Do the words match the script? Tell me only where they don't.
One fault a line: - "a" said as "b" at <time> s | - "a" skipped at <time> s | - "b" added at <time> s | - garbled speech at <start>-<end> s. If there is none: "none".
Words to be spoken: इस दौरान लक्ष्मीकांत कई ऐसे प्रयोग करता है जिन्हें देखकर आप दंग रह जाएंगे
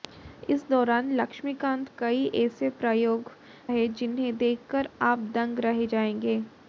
- "करता" skipped at 3.3 s